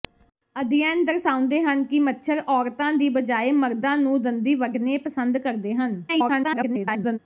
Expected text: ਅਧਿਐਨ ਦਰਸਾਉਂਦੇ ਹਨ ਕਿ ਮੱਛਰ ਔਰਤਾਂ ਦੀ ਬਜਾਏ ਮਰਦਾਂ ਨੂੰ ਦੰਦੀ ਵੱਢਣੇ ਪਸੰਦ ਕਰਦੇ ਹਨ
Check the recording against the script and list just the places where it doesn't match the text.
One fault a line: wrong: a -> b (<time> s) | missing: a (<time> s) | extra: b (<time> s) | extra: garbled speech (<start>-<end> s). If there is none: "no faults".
extra: garbled speech (6.1-7.2 s)